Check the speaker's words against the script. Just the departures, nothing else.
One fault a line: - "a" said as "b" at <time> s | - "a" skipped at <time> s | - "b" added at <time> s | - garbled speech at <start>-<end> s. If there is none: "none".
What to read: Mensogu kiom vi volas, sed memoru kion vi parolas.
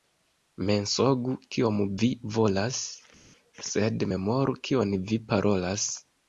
none